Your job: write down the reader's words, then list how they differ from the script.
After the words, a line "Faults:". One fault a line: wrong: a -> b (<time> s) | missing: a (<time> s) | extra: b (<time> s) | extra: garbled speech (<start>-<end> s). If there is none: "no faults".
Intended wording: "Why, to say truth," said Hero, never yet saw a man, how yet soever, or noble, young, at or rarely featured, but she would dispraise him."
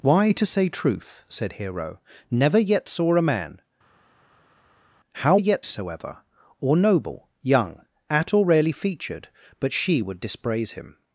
"Why, to say truth," said Hero, never yet saw a man, how yet soever, or noble, young, at or rarely featured, but she would dispraise him."
Faults:
no faults